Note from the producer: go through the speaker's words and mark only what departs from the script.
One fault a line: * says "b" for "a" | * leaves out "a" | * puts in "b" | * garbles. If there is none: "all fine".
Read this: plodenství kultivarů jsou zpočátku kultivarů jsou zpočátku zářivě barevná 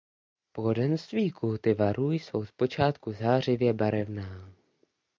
* leaves out "kultivarů jsou zpočátku"